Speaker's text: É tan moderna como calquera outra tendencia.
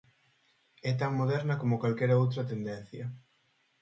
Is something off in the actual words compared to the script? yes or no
no